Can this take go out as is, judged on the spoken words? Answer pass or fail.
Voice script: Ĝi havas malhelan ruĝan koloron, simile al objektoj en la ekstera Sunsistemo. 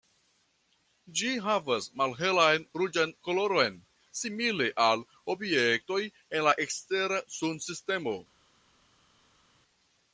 pass